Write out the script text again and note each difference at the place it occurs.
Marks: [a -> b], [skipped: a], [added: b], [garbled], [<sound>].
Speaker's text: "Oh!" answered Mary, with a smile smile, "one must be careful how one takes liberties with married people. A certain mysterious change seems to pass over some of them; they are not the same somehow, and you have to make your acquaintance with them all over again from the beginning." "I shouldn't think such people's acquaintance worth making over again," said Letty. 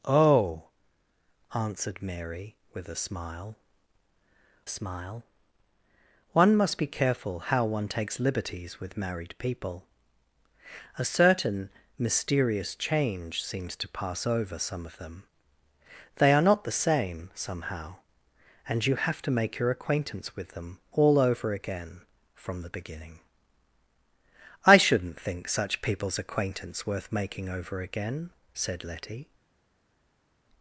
"Oh!" answered Mary, with a smile smile, "one must be careful how one takes liberties with married people. A certain mysterious change seems to pass over some of them; they are not the same somehow, and you have to make your acquaintance with them all over again from the beginning." "I shouldn't think such people's acquaintance worth making over again," said Letty.